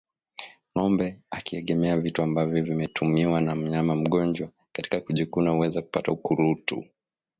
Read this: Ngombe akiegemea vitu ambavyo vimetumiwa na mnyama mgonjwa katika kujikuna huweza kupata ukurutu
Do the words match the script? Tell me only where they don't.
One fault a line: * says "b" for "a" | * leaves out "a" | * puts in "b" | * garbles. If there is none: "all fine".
all fine